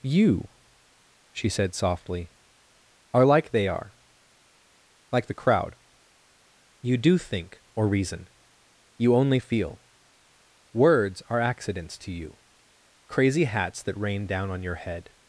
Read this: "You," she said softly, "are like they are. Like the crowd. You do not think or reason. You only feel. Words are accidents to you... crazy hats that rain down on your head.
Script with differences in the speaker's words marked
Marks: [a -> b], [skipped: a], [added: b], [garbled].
"You," she said softly, "are like they are. Like the crowd. You do [skipped: not] think or reason. You only feel. Words are accidents to you... crazy hats that rain down on your head.